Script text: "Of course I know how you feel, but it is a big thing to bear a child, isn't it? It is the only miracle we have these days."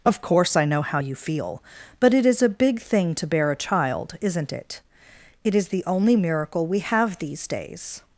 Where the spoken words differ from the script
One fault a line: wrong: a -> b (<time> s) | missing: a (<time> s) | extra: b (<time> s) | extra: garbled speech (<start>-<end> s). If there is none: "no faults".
no faults